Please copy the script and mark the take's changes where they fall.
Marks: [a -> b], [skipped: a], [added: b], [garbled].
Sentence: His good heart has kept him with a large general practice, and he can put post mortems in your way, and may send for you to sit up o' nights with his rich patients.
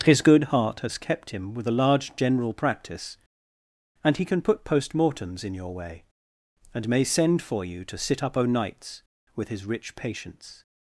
His good heart has kept him with a large general practice, and he can put post mortems in your way, and may send for you to sit up o' nights with his rich patients.